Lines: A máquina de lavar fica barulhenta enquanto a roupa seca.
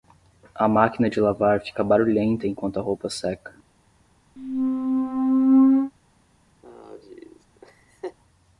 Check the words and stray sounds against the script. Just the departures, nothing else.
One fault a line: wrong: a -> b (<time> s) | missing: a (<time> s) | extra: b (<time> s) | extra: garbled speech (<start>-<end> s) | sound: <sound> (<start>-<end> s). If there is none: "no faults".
sound: squeak (4.4-5.9 s)
sound: laugh (6.6-8.2 s)